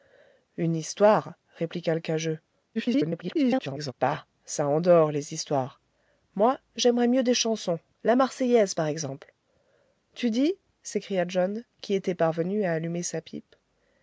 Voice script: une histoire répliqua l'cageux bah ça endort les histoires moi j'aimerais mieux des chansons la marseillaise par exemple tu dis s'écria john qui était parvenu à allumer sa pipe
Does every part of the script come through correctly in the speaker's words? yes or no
no